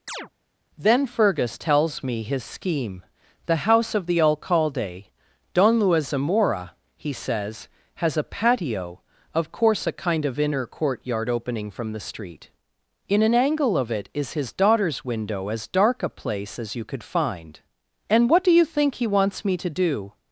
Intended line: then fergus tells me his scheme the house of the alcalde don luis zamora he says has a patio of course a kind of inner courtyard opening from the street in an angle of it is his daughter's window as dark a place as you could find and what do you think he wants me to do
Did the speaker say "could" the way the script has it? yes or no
yes